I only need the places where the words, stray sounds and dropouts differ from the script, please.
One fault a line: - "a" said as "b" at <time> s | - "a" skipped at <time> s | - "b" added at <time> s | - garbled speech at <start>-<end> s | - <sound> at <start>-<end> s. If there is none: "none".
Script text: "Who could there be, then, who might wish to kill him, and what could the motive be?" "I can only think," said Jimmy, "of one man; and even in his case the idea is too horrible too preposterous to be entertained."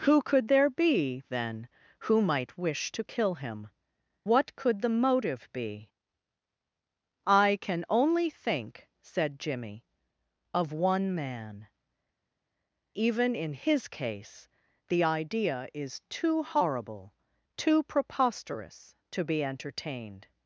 - "and" skipped at 3.7 s
- "and" skipped at 11.7 s